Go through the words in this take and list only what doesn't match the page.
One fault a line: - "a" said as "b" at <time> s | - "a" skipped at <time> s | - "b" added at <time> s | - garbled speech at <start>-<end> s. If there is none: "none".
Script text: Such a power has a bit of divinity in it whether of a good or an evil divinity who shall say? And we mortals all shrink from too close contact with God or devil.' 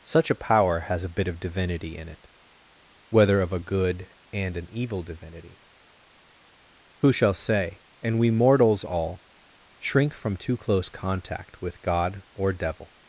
- "or" said as "and" at 4.3 s